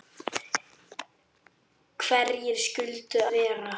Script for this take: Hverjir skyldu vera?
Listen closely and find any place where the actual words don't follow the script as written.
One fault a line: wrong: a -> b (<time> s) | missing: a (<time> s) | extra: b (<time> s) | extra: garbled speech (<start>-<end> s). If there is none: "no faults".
no faults